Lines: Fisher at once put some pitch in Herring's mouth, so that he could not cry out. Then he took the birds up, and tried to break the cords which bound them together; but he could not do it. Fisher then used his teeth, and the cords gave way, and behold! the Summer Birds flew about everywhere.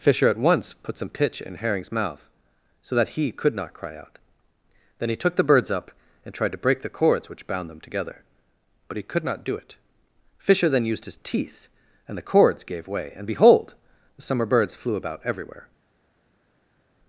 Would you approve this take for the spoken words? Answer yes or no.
yes